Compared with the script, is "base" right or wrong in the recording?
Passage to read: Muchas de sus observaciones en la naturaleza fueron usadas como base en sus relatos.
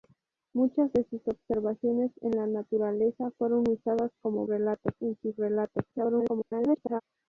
wrong